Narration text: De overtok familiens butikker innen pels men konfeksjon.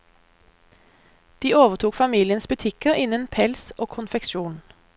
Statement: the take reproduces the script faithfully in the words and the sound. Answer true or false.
false